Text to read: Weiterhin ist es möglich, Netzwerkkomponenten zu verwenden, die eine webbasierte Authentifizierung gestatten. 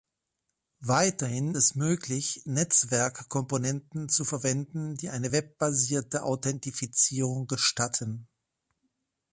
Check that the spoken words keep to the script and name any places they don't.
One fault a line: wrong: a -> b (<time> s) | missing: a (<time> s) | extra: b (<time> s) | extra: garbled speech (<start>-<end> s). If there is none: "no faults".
missing: ist (1.6 s)